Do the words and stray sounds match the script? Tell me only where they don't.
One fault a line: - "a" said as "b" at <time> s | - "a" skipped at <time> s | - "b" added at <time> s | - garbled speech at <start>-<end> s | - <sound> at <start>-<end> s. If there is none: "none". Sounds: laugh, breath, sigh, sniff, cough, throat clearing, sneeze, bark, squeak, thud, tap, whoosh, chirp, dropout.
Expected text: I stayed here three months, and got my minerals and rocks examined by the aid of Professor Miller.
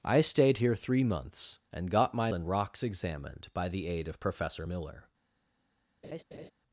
- "minerals" skipped at 2.3 s
- laugh at 6.0-6.5 s